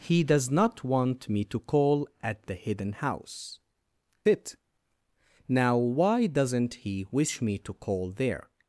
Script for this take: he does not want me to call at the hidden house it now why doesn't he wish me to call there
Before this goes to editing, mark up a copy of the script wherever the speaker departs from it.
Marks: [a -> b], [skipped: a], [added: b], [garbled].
he does not want me to call at the hidden house it now why doesn't he wish me to call there